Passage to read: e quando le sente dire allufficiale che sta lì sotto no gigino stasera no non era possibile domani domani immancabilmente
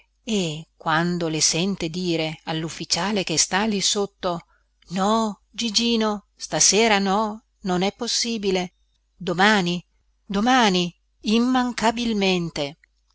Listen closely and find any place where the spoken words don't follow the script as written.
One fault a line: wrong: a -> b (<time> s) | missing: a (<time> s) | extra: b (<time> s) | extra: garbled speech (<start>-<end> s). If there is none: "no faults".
wrong: era -> è (7.8 s)